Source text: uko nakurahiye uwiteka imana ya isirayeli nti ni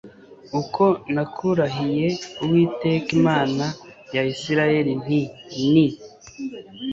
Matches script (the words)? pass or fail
pass